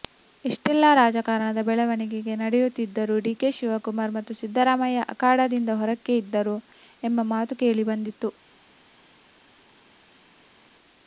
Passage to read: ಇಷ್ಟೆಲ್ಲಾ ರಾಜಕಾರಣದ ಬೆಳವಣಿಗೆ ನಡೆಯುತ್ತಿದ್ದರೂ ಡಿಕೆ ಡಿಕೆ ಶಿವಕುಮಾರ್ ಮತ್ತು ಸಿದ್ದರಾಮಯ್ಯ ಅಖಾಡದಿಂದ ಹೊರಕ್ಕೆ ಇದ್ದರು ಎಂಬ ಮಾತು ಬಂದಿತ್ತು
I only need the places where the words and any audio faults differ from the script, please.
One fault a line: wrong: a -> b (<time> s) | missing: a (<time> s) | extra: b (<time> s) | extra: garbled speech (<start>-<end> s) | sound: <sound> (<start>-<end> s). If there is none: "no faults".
missing: ಡಿಕೆ (3.5 s)
extra: ಕೇಳಿ (7.6 s)